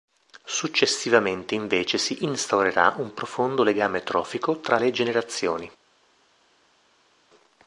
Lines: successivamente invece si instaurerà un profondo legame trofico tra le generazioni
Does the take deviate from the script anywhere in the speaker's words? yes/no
no